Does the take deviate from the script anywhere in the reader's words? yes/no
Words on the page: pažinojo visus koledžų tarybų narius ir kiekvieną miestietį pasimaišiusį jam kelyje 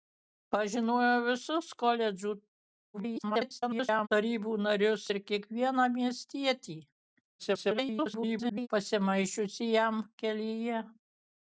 yes